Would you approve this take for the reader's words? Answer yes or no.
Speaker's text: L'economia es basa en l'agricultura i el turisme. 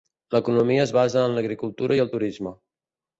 yes